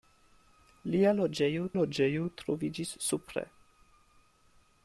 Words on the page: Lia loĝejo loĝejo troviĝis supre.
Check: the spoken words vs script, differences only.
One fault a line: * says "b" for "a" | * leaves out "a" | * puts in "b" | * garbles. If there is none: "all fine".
all fine